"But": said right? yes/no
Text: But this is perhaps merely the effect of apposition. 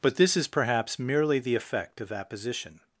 yes